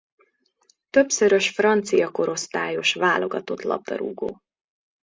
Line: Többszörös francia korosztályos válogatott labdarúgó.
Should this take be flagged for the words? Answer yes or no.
no